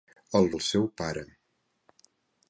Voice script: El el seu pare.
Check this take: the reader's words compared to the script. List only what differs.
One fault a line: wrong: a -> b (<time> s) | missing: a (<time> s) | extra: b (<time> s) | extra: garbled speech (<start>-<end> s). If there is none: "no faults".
no faults